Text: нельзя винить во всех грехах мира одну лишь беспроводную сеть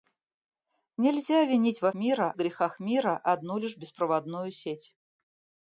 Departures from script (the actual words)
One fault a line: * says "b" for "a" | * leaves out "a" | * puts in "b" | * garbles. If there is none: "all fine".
* says "мира" for "всех"